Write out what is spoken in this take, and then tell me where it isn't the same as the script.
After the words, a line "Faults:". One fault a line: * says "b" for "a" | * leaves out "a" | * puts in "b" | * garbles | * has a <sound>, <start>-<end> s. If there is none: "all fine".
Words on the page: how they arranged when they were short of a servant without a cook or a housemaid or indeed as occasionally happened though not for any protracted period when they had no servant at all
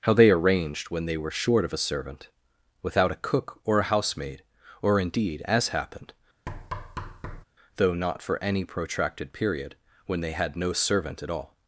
how they arranged when they were short of a servant without a cook or a housemaid or indeed as happened though not for any protracted period when they had no servant at all
Faults:
* leaves out "occasionally"
* has a thud, 6.5-7.4 s